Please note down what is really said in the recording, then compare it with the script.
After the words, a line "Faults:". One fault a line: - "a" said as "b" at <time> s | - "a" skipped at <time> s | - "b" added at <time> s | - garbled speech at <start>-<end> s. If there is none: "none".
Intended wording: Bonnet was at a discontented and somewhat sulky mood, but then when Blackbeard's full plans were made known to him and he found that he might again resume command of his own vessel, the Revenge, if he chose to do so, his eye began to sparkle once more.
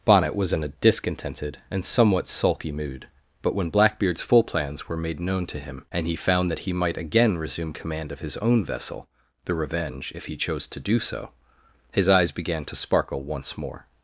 Bonnet was in a discontented and somewhat sulky mood, but when Blackbeard's full plans were made known to him and he found that he might again resume command of his own vessel, the Revenge, if he chose to do so, his eyes began to sparkle once more.
Faults:
- "at" said as "in" at 0.5 s
- "then" skipped at 3.5 s
- "eye" said as "eyes" at 12.1 s